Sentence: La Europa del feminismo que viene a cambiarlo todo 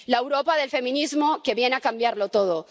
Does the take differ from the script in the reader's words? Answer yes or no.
no